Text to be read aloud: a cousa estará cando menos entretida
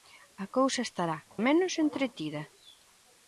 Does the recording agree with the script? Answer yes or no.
no